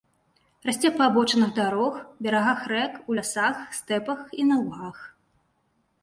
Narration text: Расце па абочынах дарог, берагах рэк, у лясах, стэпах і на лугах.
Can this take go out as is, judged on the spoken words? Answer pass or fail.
pass